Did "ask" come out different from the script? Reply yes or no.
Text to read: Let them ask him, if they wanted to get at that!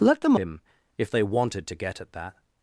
yes